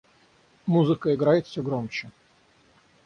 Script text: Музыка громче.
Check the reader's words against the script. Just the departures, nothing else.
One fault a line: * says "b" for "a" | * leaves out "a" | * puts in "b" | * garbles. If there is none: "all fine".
* puts in "играет всё"